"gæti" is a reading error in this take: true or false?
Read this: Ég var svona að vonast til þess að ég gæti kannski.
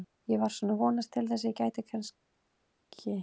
false